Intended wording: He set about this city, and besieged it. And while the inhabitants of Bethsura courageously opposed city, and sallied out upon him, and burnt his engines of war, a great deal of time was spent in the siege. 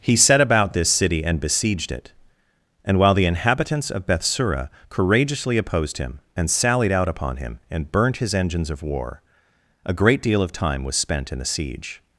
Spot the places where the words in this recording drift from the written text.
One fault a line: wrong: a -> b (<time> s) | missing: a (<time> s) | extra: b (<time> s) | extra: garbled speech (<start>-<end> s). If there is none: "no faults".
wrong: city -> him (6.0 s)